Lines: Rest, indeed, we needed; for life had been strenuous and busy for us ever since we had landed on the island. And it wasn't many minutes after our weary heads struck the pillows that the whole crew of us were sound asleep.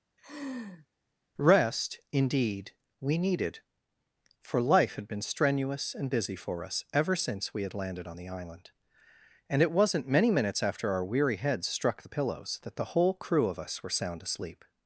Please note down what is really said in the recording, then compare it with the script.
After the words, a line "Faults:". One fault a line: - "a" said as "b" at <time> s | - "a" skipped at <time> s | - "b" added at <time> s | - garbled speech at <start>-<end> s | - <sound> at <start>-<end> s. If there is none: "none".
Rest, indeed, we needed; for life had been strenuous and busy for us ever since we had landed on the island. And it wasn't many minutes after our weary heads struck the pillows that the whole crew of us were sound asleep.
Faults:
- laugh at 0.2-0.9 s